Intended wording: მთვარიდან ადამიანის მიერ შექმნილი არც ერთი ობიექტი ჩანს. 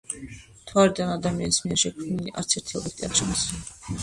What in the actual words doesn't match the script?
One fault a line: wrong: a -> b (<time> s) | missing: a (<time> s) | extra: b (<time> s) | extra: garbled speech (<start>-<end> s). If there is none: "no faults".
extra: არ (3.1 s)